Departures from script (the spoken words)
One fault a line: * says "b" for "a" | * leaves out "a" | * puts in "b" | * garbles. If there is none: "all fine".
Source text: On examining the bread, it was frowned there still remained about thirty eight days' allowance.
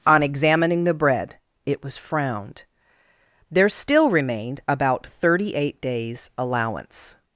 all fine